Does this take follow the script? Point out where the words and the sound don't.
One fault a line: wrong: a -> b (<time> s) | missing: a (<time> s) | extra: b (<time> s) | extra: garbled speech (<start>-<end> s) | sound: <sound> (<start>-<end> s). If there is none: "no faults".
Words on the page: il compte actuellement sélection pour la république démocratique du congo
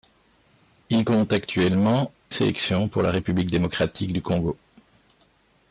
no faults